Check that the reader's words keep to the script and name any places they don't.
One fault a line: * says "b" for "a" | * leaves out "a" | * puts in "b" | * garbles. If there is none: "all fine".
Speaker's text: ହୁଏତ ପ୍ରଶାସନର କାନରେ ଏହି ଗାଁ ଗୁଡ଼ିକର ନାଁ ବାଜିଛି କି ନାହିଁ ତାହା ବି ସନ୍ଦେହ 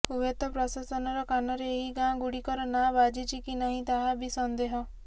all fine